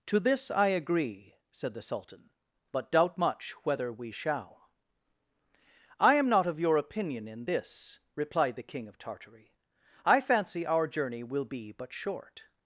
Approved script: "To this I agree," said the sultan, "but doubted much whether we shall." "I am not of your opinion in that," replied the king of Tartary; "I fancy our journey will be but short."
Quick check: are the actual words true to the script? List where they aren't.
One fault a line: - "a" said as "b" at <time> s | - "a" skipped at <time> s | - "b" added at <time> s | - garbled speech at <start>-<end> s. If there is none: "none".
- "doubted" said as "doubt" at 2.9 s
- "that" said as "this" at 7.4 s